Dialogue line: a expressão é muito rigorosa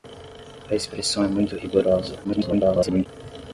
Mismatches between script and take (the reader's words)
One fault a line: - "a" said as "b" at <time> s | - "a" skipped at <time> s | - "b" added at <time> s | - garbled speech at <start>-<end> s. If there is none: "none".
- garbled speech at 2.2-3.1 s